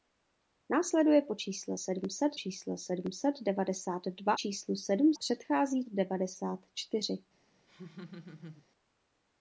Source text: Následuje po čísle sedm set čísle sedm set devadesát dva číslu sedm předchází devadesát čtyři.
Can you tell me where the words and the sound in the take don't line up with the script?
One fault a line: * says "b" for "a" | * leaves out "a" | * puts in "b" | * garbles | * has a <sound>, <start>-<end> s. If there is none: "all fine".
* has a laugh, 7.7-8.7 s